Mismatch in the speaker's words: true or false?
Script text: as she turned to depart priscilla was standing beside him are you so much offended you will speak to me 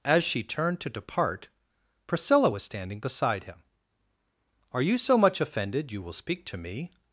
false